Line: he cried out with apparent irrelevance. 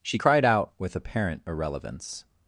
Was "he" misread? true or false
true